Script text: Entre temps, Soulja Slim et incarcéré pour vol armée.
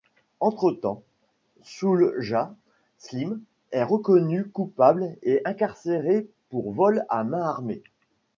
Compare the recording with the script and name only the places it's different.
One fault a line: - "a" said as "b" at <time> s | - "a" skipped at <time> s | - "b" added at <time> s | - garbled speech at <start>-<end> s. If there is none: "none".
- "est reconnu coupable" added at 3.7 s
- "à main" added at 7.1 s